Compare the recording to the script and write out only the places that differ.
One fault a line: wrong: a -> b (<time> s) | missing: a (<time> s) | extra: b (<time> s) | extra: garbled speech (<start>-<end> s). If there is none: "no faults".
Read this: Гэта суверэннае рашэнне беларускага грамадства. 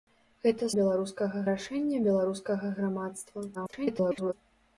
wrong: суверэннае -> беларускага (0.8 s)
extra: garbled speech (3.5-4.3 s)